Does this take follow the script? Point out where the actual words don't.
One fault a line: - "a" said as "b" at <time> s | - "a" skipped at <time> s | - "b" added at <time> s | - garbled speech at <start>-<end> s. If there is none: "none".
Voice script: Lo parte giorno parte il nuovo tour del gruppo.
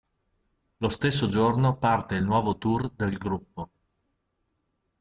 - "parte" said as "stesso" at 0.9 s